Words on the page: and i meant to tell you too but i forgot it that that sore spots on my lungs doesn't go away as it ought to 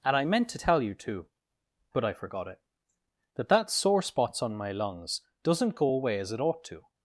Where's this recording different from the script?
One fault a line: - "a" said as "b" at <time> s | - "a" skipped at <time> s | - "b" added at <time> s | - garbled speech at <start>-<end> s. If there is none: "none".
none